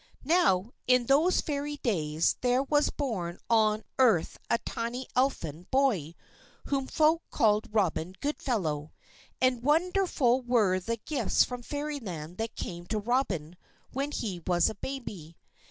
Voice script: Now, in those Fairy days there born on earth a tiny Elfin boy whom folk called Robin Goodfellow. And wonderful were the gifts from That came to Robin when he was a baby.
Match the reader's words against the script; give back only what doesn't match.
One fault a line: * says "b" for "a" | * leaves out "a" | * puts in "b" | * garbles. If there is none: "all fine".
* puts in "was"
* puts in "Fairyland"